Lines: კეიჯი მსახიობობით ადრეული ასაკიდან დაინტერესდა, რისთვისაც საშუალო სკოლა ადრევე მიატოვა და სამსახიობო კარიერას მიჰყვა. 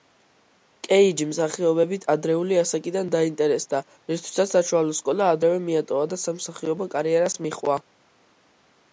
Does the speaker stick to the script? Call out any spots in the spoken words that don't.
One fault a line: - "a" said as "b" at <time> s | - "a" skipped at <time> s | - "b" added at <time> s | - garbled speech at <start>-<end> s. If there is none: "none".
none